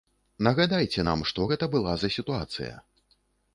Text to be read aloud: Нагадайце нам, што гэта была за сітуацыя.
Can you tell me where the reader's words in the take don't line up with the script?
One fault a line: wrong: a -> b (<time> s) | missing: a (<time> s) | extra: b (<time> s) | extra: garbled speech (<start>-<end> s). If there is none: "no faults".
no faults